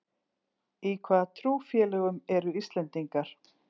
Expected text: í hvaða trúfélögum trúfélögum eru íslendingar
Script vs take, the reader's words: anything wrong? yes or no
yes